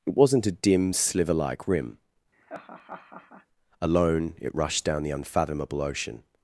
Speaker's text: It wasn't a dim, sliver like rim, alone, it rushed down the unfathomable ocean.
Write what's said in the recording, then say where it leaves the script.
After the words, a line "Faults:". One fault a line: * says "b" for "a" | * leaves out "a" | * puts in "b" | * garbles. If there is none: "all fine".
It wasn't a dim, sliver like rim, alone, it rushed down the unfathomable ocean.
Faults:
all fine